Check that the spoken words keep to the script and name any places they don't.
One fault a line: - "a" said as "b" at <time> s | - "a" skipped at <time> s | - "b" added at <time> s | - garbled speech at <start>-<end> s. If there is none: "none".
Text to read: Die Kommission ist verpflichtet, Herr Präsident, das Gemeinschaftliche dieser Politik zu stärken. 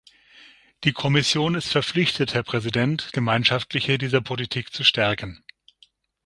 - "das" skipped at 3.1 s